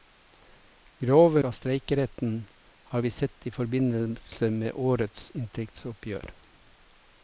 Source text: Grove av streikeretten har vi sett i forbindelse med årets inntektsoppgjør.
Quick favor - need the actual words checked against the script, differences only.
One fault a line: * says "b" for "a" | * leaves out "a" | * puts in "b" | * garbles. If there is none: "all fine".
all fine